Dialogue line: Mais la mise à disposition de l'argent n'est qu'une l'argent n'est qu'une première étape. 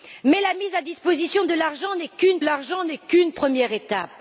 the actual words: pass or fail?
pass